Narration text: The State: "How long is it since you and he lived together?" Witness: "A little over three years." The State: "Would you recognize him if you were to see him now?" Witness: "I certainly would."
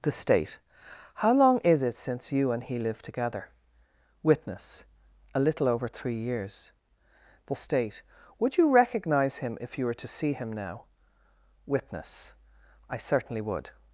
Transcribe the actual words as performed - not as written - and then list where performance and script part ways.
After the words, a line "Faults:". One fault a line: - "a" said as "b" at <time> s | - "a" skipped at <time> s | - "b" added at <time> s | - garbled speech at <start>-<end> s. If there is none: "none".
The State: "How long is it since you and he lived together?" Witness: "A little over three years." The State: "Would you recognize him if you were to see him now?" Witness: "I certainly would."
Faults:
none